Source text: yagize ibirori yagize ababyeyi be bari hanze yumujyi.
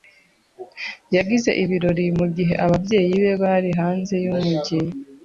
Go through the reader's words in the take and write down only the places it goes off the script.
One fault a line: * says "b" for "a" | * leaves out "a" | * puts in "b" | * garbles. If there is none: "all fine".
* says "mugihe" for "yagize"